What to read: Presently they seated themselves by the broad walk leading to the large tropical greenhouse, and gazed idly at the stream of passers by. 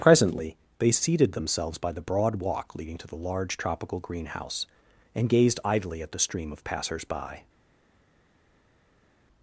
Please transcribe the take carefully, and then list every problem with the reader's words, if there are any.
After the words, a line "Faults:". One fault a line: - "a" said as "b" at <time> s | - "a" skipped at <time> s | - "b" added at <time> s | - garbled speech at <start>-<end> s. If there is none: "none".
Presently they seated themselves by the broad walk leading to the large tropical greenhouse, and gazed idly at the stream of passers by.
Faults:
none